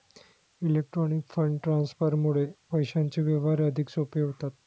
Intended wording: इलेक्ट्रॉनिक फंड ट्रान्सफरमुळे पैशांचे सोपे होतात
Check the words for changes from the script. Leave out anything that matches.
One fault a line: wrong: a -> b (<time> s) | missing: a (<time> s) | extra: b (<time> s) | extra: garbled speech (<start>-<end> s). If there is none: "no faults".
extra: व्यवहार अधिक (3.2 s)